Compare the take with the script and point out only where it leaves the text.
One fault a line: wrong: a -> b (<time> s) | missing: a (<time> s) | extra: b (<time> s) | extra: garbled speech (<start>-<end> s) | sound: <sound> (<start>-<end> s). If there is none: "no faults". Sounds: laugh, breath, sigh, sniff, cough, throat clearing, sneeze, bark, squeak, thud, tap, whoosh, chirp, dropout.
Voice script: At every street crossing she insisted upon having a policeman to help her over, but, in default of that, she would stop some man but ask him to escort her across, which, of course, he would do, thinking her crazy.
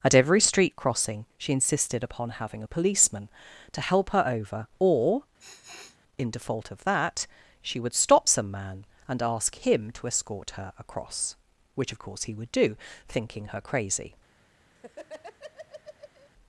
wrong: but -> or (4.8 s)
sound: sniff (5.4-6.0 s)
wrong: but -> and (9.1 s)
sound: laugh (14.8-16.3 s)